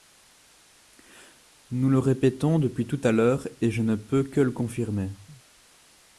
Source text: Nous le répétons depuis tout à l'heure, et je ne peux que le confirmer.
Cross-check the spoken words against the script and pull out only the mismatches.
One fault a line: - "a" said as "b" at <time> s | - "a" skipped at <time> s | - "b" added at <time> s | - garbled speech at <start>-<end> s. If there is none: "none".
none